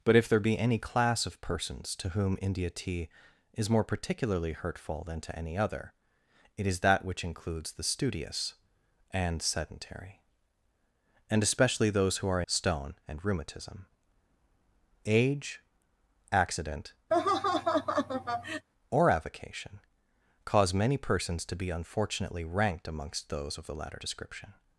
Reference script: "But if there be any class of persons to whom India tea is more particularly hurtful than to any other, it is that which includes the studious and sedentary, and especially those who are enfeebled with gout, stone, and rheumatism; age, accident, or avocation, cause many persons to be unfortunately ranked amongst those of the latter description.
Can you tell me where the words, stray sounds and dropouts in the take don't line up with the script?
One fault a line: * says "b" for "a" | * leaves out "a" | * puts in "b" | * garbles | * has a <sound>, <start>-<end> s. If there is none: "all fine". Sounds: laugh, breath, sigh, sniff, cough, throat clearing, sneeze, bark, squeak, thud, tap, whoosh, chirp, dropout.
* leaves out "enfeebled with gout"
* has a laugh, 17.1-18.7 s